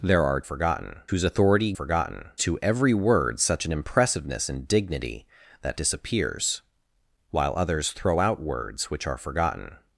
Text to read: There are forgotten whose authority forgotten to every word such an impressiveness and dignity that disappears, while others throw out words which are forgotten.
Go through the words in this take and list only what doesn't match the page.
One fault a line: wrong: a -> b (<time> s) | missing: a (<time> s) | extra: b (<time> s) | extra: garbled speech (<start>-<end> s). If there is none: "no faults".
no faults